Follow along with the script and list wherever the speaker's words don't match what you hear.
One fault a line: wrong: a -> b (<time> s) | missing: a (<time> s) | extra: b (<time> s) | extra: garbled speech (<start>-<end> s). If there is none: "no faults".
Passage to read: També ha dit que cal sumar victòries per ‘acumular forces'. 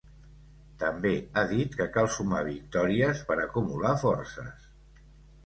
no faults